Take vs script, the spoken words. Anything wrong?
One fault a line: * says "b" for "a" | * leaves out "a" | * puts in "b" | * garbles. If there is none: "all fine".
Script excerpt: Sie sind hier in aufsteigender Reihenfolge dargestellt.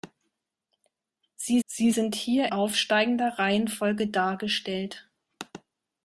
* puts in "sie"
* leaves out "in"